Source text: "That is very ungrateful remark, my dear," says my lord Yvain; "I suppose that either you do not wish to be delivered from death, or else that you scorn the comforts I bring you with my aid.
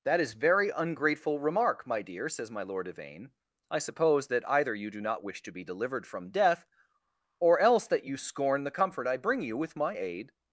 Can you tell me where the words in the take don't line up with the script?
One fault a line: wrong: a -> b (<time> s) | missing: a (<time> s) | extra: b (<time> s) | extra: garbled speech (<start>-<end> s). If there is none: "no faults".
wrong: comforts -> comfort (8.7 s)